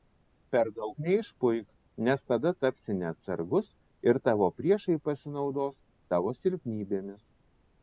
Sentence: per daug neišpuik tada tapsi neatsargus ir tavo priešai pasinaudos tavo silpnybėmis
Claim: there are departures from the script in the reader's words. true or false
true